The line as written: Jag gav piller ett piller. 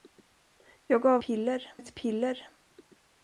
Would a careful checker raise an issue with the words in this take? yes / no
no